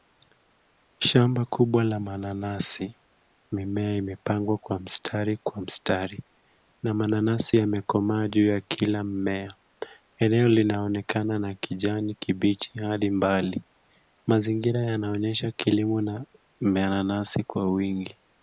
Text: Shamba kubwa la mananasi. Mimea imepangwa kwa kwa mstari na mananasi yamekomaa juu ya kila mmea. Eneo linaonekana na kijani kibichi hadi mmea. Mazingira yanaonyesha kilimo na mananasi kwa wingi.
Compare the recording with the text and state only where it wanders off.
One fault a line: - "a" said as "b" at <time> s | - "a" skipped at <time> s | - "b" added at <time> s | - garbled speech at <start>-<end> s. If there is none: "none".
- "mstari" added at 4.8 s
- "mmea" said as "mbali" at 13.1 s